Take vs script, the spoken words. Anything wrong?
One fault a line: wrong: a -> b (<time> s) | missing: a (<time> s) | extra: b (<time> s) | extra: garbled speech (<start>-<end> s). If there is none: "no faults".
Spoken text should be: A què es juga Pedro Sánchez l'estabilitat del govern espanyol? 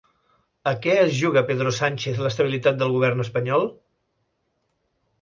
no faults